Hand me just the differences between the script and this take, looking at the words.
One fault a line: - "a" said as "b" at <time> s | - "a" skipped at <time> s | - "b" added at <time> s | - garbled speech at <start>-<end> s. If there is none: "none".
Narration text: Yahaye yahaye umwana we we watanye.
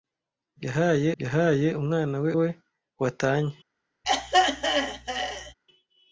none